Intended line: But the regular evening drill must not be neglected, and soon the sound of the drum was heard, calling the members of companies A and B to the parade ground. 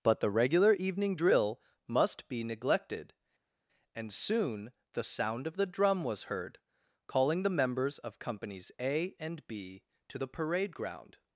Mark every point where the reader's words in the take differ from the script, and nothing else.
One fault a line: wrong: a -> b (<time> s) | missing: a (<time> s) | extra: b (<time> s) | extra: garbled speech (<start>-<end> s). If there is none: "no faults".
missing: not (2.3 s)